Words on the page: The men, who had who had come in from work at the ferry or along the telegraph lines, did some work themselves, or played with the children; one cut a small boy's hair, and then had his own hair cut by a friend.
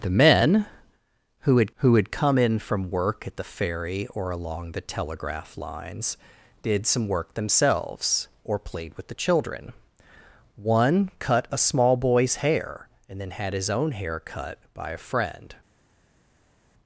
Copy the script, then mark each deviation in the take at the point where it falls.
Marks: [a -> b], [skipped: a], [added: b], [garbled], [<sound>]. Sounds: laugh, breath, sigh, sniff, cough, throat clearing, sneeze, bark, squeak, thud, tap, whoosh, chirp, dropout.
The men, who had who had come in from work at the ferry or along the telegraph lines, did some work themselves, or played with the children; one cut a small boy's hair, and then had his own hair cut by a friend.